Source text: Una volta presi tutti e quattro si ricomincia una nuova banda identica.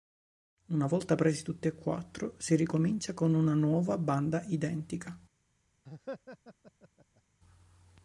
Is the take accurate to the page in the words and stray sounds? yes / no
no